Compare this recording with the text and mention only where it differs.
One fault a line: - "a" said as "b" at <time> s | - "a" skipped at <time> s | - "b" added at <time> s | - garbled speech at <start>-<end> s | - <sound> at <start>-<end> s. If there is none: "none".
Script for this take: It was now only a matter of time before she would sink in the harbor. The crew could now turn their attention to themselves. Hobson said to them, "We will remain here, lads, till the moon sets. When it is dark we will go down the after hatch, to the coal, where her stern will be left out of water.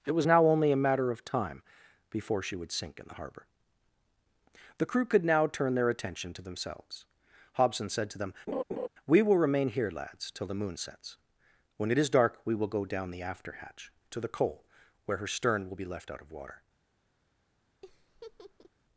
- laugh at 8.5-8.9 s
- laugh at 17.8-18.7 s